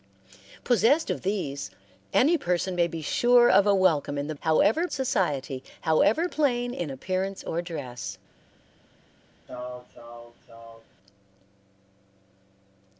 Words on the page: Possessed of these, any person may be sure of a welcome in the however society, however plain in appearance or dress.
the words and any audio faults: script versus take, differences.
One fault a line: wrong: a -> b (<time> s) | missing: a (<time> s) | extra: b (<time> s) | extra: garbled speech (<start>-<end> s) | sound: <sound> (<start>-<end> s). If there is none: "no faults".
sound: sneeze (9.5-10.9 s)